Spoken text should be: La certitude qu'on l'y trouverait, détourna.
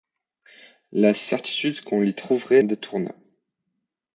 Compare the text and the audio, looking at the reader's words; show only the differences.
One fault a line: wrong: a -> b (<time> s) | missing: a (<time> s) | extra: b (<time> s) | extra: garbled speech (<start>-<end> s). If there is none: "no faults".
no faults